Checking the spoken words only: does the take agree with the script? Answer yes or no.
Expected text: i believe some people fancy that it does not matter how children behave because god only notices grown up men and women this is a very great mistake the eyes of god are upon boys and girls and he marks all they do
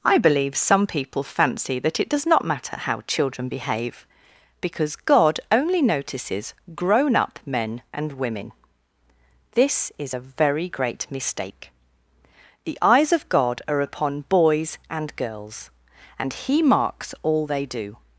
yes